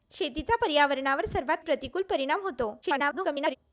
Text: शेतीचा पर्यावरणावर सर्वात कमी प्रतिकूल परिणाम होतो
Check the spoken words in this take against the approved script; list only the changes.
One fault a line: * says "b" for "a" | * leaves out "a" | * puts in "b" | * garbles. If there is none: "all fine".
* leaves out "कमी"
* garbles